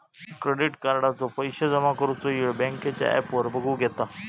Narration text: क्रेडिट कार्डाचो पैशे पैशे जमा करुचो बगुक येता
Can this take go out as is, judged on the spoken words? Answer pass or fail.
fail